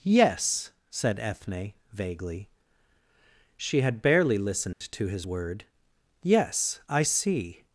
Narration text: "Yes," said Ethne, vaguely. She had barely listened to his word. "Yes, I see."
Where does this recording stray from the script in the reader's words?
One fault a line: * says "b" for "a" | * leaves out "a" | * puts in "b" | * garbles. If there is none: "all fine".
all fine